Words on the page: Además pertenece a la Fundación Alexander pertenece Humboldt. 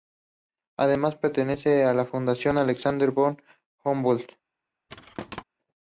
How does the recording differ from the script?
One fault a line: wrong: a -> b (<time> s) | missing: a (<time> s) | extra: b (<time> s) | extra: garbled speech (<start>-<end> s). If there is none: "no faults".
wrong: pertenece -> von (3.1 s)